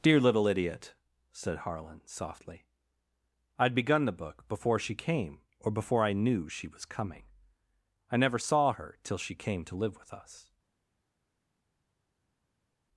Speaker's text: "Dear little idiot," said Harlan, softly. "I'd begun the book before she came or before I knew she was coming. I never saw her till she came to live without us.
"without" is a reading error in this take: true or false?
true